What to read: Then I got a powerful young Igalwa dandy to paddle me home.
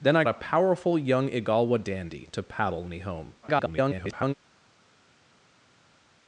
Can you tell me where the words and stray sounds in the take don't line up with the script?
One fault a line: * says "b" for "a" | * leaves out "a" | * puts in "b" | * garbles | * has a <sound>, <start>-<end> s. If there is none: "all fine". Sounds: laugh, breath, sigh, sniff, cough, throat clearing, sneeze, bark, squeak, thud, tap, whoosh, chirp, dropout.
* leaves out "got"
* garbles